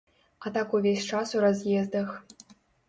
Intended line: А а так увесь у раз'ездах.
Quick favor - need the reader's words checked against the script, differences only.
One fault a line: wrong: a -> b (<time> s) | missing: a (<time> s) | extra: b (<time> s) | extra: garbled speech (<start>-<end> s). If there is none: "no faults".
missing: а (0.5 s)
extra: час (1.0 s)